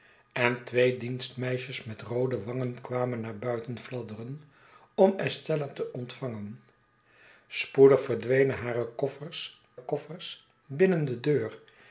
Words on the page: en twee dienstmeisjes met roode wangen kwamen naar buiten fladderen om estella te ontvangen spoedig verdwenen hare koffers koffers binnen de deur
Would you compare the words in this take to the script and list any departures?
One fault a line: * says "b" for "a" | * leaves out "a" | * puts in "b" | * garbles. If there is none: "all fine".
all fine